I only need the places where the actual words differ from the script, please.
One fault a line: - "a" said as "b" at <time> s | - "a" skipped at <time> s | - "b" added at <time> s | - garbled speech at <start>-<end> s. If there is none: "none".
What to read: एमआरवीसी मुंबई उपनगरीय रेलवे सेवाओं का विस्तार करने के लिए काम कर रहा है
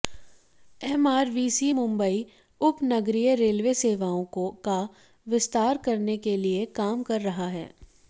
none